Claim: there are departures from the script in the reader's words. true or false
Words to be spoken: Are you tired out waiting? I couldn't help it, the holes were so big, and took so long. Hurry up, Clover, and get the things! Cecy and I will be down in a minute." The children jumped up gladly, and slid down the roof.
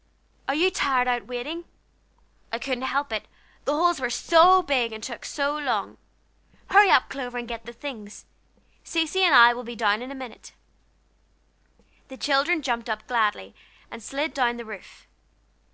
false